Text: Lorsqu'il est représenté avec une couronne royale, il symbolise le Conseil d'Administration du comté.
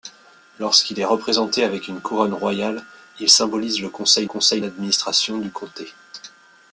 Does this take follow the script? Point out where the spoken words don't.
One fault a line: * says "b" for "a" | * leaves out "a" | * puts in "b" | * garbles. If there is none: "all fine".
* puts in "Conseil"